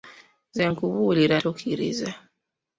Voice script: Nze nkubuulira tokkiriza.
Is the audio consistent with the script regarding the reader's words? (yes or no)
yes